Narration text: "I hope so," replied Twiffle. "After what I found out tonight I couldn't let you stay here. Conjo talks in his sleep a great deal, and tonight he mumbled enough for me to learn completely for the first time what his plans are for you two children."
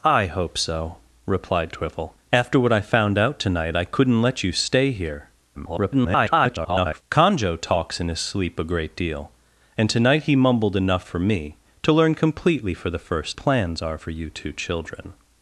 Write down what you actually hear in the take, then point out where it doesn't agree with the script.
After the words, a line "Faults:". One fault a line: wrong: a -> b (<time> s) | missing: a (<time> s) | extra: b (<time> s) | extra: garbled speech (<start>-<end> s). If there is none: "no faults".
"I hope so," replied Twiffle. "After what I found out tonight I couldn't let you stay here. [garbled] Conjo talks in his sleep a great deal, and tonight he mumbled enough for me to learn completely for the first plans are for you two children."
Faults:
extra: garbled speech (5.5-7.0 s)
missing: time what his (13.4 s)